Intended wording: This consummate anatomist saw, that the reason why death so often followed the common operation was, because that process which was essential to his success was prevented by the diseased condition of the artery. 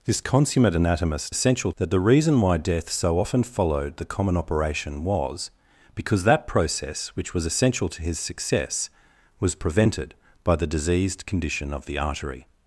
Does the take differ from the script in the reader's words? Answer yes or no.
yes